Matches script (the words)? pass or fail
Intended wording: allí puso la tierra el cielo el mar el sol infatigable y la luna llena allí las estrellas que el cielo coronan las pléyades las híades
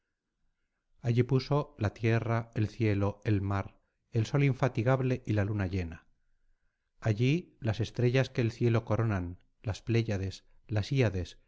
pass